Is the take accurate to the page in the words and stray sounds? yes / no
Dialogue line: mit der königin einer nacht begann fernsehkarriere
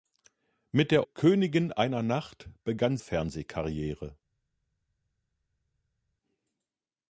yes